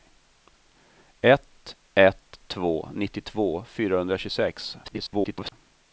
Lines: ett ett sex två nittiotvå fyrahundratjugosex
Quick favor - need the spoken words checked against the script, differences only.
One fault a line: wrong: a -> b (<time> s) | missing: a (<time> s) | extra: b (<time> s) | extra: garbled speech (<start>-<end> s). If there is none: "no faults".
missing: sex (2.4 s)
extra: garbled speech (4.8-5.5 s)